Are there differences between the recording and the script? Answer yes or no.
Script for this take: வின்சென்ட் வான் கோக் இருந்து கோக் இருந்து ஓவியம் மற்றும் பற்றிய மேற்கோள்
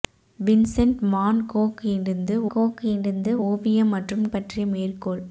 no